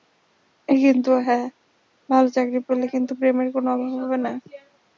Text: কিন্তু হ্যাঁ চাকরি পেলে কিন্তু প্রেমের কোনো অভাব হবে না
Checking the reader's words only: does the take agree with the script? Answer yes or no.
no